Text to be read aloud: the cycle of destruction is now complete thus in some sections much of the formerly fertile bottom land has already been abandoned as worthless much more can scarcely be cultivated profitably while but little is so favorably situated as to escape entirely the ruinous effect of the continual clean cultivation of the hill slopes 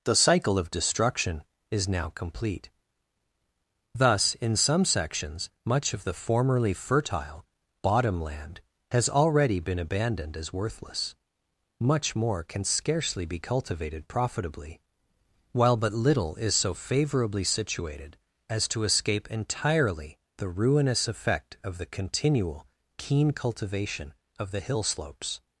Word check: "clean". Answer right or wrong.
wrong